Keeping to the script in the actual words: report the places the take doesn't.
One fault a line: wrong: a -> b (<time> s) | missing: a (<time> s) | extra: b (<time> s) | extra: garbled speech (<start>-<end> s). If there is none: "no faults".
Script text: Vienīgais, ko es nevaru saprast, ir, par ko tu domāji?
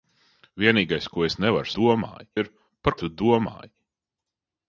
wrong: saprast -> domāji (1.8 s)
missing: ko (3.0 s)